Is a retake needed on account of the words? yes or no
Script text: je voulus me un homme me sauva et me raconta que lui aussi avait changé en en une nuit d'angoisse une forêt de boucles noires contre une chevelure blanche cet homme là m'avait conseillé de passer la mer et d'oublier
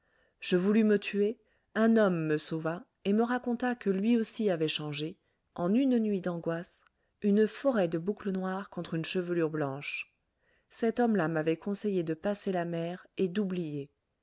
yes